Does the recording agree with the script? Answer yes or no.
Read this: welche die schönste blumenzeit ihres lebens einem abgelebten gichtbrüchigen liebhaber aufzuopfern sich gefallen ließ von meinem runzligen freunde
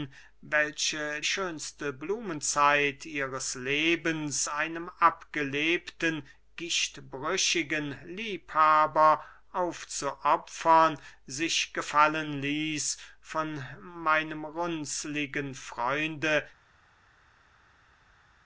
no